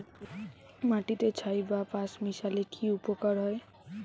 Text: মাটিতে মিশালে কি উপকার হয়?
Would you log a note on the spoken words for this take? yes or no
yes